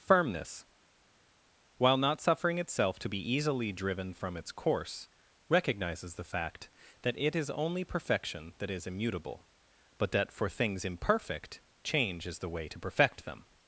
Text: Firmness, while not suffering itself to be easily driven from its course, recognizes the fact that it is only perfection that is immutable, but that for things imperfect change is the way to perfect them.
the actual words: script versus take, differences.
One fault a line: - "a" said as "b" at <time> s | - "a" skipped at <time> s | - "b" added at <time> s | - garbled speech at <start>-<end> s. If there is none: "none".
none